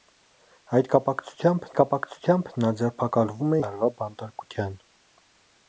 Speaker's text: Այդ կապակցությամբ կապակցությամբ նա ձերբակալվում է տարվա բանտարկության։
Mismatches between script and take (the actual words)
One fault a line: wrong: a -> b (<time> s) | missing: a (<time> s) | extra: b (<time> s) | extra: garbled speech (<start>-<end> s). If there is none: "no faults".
no faults